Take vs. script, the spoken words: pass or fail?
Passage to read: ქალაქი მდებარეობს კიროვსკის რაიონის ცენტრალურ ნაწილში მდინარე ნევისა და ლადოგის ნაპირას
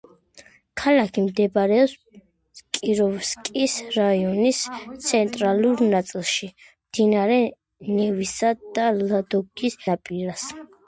pass